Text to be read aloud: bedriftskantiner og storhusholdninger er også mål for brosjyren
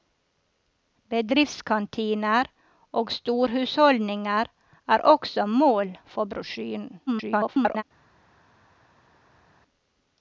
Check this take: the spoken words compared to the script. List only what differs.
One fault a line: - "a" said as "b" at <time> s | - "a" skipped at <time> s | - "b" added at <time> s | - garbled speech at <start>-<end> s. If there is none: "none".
- garbled speech at 7.1-7.8 s